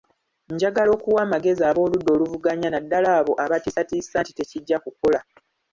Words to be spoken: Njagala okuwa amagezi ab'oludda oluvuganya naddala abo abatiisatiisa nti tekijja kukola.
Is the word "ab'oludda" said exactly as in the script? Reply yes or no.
yes